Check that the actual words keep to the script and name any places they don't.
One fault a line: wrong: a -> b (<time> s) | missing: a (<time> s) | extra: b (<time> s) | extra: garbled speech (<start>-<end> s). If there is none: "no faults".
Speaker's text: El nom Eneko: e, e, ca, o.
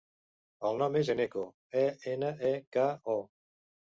extra: és (1.0 s)
extra: ena (2.1 s)